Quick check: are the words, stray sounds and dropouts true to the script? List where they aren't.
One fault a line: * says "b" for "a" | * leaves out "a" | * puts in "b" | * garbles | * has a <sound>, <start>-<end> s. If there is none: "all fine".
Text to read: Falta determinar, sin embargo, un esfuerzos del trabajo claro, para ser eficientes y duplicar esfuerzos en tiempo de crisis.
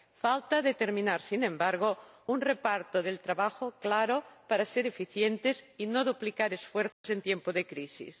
* says "reparto" for "esfuerzos"
* puts in "no"
* has a dropout, 6.9-7.0 s